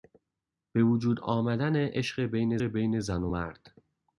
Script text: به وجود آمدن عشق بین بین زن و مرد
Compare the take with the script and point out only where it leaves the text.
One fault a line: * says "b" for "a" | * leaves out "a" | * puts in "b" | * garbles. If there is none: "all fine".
all fine